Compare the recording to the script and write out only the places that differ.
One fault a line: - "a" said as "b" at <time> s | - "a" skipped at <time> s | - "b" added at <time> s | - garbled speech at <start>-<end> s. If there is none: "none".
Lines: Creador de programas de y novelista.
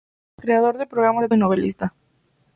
none